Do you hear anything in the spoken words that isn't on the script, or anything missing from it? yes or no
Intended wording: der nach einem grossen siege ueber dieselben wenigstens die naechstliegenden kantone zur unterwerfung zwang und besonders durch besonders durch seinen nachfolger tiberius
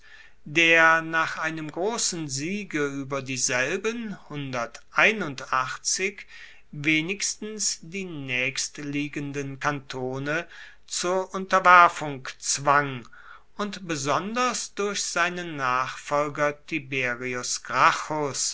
yes